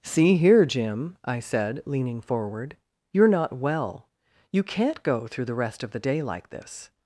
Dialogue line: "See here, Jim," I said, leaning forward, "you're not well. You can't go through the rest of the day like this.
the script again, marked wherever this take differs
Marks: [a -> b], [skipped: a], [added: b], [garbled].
"See here, Jim," I said, leaning forward, "you're not well. You can't go through the rest of the day like this.